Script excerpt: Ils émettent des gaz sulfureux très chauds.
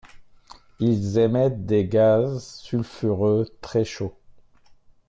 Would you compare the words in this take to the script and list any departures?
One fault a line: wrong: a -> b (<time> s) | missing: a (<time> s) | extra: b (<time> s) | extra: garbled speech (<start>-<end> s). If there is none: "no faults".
no faults